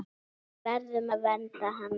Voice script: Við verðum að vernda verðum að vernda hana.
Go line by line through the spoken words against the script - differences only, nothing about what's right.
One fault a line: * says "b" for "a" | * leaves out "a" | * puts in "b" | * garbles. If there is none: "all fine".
* leaves out "verðum að vernda"